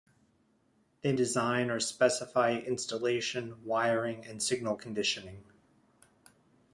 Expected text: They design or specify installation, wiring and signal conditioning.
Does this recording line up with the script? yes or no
yes